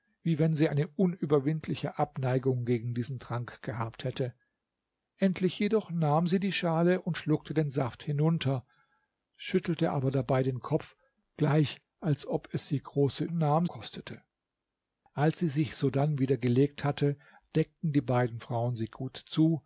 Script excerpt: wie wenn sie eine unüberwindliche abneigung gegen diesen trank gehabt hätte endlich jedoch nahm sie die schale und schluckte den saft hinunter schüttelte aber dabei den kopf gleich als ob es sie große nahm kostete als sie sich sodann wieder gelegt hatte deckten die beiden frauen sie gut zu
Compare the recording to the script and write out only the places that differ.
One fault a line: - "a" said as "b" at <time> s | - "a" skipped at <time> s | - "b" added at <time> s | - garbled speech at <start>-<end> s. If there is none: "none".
none